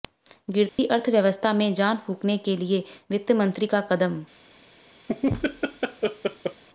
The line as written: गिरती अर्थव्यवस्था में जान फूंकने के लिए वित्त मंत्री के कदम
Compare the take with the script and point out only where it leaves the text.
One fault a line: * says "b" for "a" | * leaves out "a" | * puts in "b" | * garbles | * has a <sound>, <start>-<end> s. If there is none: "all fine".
* has a dropout, 0.7-0.8 s
* says "का" for "के"
* has a laugh, 5.1-6.6 s